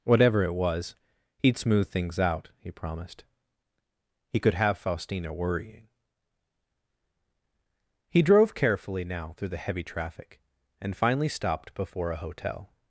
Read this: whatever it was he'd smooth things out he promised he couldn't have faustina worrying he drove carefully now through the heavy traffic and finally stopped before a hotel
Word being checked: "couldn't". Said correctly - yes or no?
no